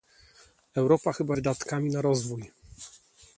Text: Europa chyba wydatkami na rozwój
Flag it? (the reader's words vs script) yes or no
no